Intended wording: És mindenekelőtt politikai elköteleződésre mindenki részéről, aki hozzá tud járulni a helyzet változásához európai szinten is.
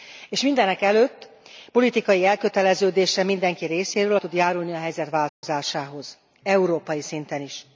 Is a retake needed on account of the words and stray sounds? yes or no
yes